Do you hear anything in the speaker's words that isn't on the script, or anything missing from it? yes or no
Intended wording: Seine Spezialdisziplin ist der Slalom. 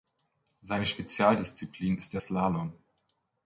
no